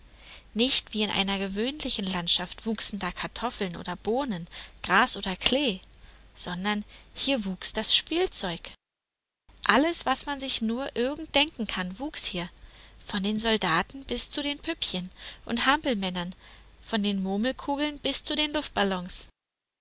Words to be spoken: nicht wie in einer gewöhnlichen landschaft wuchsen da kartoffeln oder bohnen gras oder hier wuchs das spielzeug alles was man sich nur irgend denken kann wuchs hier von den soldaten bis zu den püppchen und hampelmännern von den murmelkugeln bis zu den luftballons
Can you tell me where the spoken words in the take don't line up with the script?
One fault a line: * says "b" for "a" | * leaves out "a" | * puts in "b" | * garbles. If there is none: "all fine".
* puts in "klee sondern"